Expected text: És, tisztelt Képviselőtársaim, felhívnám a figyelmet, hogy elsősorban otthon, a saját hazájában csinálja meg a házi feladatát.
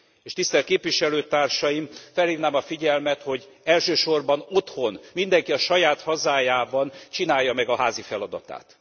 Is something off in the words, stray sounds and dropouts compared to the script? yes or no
yes